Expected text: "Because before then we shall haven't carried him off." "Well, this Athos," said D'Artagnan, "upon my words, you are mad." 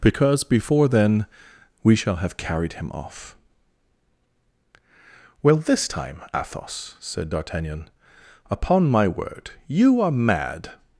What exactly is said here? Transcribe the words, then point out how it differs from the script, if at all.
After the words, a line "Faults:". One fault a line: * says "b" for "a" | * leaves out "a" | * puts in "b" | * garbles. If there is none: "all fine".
"Because before then we shall have carried him off." "Well, this time, Athos," said D'Artagnan, "upon my word, you are mad."
Faults:
* says "have" for "haven't"
* puts in "time"
* says "word" for "words"